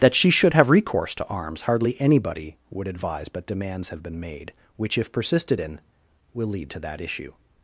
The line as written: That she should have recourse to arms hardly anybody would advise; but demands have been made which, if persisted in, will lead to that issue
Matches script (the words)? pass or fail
pass